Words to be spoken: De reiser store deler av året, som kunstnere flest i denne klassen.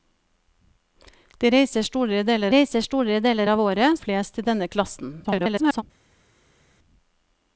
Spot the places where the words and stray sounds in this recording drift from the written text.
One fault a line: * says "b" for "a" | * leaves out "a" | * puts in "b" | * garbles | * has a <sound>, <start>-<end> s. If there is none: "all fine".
* puts in "reiser store deler"
* leaves out "som kunstnere"
* garbles